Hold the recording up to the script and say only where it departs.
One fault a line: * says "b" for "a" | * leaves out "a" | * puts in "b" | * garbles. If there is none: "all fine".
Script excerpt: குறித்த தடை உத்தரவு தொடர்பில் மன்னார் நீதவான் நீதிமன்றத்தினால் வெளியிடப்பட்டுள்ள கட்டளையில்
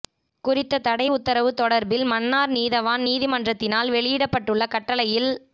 all fine